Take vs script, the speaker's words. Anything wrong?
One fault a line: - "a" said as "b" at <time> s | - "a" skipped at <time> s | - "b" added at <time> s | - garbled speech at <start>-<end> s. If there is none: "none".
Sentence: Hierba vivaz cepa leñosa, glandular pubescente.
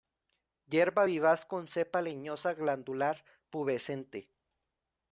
- "con" added at 1.4 s